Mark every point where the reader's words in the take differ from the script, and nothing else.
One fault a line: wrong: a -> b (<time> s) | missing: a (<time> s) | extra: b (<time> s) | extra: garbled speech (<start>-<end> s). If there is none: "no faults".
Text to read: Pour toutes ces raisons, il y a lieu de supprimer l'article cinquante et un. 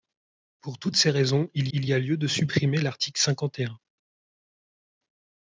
extra: il (1.7 s)